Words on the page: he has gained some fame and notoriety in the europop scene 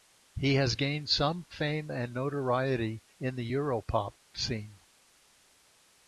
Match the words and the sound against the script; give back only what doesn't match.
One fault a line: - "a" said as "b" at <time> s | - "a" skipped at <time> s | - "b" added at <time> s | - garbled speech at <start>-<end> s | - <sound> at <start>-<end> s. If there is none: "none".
none